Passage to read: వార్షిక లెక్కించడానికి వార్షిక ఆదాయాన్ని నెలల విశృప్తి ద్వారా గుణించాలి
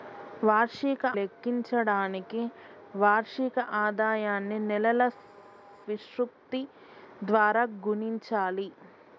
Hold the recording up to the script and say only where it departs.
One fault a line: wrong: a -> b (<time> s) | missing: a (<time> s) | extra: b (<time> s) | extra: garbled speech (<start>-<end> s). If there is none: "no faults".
no faults